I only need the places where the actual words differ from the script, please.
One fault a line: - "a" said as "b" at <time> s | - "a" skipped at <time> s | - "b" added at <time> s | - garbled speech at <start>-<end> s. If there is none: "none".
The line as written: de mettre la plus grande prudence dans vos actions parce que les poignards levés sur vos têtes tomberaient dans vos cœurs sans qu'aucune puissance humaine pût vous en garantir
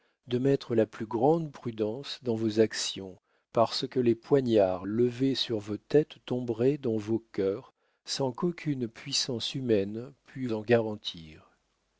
- "vous" skipped at 10.5 s